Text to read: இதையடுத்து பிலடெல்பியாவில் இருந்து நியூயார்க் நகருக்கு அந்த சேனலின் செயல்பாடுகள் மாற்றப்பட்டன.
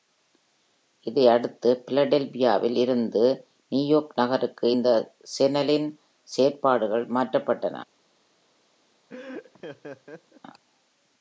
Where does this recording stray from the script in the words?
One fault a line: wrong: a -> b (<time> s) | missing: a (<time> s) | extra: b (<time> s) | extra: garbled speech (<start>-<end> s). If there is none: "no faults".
wrong: அந்த -> இந்த (4.7 s)